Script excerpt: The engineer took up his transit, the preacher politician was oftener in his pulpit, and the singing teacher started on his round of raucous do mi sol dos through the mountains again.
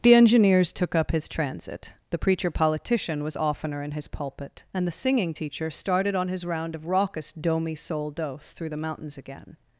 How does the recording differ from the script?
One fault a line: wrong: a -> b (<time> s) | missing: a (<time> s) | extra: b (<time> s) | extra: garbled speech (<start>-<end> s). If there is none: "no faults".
wrong: engineer -> engineers (0.1 s)